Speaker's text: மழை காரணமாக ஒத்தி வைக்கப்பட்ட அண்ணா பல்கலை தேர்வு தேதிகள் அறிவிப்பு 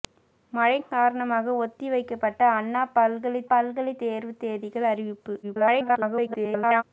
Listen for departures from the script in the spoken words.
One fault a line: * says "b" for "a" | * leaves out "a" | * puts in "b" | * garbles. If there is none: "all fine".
* puts in "பல்கலை"
* garbles